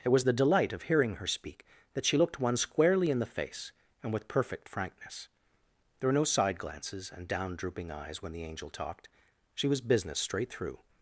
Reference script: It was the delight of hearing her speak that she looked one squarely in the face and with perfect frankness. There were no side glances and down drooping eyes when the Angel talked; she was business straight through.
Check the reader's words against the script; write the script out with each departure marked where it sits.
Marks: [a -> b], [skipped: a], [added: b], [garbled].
It was the delight of hearing her speak that she looked one squarely in the face and with perfect frankness. There were no side glances and down drooping eyes when the Angel talked; she was business straight through.